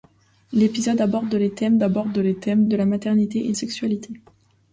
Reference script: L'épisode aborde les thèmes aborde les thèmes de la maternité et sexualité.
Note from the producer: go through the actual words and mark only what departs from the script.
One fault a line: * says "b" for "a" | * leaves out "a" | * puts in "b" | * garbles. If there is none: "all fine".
all fine